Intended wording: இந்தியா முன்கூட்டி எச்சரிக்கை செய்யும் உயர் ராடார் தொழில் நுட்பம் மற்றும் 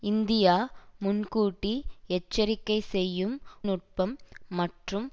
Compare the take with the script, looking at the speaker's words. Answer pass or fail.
fail